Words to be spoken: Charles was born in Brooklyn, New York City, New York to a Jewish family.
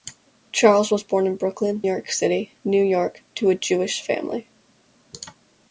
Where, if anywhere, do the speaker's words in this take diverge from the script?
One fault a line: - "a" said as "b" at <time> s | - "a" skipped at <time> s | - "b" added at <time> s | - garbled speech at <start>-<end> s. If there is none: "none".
- "New" skipped at 1.8 s